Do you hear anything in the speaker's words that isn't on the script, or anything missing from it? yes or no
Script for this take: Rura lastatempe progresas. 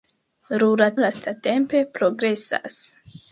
no